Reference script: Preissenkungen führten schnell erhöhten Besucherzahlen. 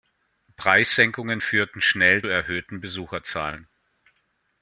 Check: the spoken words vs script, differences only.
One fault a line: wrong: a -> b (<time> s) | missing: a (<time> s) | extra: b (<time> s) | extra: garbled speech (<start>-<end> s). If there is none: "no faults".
no faults